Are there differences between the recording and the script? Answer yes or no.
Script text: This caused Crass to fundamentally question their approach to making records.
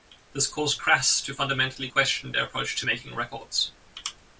no